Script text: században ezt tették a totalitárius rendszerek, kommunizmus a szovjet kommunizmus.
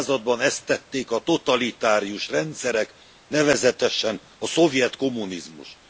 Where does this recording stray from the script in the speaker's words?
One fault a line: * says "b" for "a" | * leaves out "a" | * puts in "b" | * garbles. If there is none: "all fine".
* says "nevezetesen" for "kommunizmus"